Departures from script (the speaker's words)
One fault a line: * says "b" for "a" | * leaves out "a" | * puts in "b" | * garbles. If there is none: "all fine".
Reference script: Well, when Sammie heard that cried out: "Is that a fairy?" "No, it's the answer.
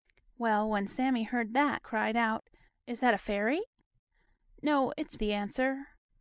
all fine